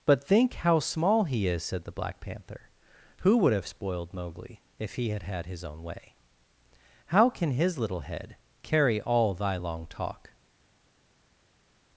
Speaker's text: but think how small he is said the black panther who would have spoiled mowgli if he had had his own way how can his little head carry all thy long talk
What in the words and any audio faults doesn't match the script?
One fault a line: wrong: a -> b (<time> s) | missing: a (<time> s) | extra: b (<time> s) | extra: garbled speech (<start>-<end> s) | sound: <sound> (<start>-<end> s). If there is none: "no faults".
no faults